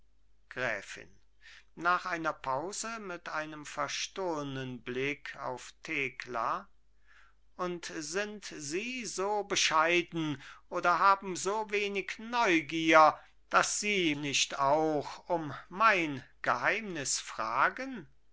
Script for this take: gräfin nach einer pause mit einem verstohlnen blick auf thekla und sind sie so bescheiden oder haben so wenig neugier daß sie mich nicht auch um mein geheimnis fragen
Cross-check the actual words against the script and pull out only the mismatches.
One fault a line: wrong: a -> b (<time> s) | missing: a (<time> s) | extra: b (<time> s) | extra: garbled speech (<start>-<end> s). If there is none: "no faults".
missing: mich (14.1 s)